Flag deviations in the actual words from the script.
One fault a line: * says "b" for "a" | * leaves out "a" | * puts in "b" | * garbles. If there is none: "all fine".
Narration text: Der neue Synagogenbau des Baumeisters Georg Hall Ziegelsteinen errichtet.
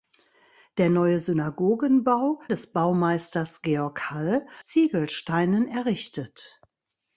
all fine